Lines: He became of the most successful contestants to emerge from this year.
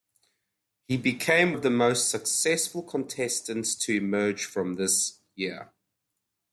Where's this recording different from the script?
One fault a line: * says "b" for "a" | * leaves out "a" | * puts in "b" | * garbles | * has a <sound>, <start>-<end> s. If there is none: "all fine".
all fine